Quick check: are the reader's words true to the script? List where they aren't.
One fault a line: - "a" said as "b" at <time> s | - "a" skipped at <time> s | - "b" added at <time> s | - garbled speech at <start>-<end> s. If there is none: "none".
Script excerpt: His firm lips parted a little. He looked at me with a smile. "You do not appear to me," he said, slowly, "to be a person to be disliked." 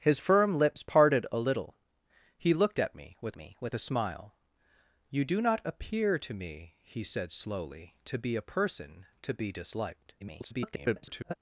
- "me with" added at 3.4 s
- garbled speech at 10.2-11.3 s